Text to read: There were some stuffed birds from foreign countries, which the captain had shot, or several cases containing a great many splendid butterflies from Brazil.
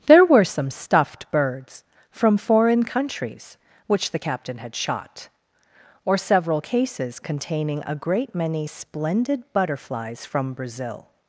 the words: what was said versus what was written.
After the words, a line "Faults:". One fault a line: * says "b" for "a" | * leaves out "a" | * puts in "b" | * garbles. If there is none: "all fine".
There were some stuffed birds from foreign countries, which the captain had shot, or several cases containing a great many splendid butterflies from Brazil.
Faults:
all fine